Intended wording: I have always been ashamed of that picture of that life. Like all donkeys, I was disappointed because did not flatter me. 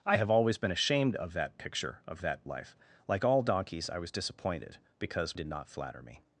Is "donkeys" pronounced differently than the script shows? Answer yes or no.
no